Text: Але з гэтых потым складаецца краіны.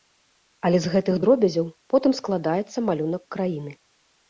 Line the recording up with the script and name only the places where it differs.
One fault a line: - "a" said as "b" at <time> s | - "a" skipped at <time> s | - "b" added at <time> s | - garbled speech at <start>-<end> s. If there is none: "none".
- "дробязяў" added at 1.2 s
- "малюнак" added at 2.9 s